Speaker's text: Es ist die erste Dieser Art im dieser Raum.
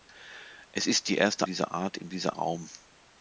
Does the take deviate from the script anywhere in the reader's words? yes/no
no